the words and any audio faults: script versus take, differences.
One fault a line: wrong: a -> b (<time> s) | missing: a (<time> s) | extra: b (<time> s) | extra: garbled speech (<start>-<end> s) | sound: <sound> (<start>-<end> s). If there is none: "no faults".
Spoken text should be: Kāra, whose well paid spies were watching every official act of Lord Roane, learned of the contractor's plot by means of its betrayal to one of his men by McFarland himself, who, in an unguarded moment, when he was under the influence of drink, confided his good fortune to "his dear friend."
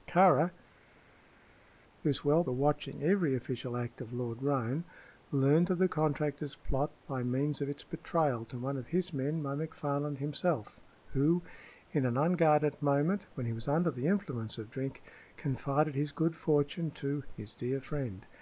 missing: paid spies (2.4 s)